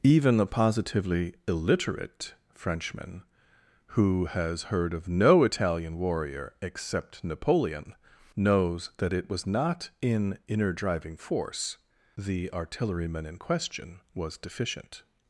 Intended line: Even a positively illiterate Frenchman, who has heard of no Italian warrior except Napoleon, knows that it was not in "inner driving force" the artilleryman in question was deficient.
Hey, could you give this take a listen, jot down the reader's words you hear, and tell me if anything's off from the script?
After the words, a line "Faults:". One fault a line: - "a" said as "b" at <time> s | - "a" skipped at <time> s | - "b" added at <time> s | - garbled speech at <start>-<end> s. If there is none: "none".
Even a positively illiterate Frenchman, who has heard of no Italian warrior except Napoleon, knows that it was not in "inner driving force" the artilleryman in question was deficient.
Faults:
none